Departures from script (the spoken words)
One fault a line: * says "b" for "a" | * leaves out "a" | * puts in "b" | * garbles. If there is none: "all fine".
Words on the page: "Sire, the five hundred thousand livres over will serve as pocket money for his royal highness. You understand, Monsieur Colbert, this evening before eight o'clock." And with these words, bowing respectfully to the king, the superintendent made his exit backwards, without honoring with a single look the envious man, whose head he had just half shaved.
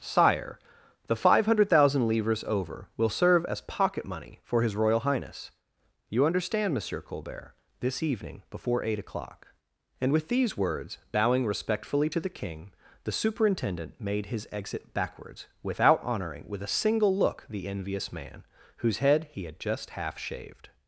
all fine